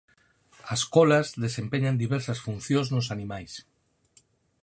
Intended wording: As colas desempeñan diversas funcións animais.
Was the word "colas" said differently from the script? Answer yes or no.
no